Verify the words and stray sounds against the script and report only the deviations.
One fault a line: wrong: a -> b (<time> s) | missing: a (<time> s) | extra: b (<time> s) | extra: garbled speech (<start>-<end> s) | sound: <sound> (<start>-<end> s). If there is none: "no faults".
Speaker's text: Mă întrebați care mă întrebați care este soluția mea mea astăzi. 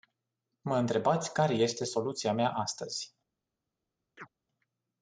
missing: mă întrebați care (1.5 s)
missing: mea (2.5 s)
sound: chirp (4.2-4.3 s)